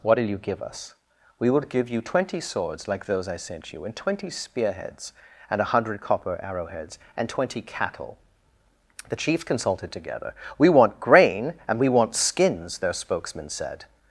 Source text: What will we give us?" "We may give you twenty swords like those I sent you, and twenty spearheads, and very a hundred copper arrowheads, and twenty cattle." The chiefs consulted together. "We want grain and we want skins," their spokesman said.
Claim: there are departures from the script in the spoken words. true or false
true